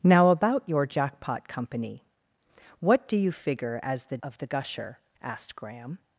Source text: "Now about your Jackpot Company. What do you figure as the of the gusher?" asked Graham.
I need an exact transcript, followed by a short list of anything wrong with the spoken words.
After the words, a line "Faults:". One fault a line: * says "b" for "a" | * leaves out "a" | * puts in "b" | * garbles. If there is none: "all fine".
"Now about your Jackpot Company. What do you figure as the of the gusher?" asked Graham.
Faults:
all fine